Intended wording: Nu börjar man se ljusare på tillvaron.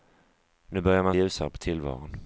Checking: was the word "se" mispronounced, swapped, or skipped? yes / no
yes